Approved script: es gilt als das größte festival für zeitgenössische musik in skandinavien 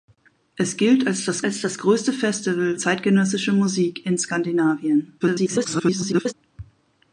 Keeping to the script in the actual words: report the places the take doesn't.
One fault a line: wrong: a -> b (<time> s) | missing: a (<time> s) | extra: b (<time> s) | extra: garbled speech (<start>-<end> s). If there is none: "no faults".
extra: als das (1.4 s)
missing: für (2.8 s)
extra: garbled speech (5.2-6.3 s)